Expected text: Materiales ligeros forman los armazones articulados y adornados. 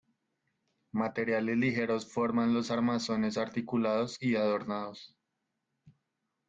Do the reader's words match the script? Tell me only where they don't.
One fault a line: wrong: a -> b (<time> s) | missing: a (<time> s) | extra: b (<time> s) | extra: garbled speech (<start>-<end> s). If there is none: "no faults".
no faults